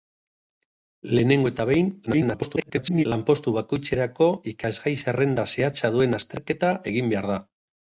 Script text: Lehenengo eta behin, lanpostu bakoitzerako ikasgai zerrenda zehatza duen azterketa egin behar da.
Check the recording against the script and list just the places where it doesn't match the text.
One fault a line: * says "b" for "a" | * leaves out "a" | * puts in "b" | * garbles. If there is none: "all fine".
* garbles